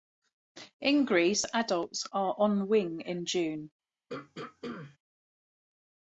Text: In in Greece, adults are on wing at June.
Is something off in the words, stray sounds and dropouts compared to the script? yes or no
yes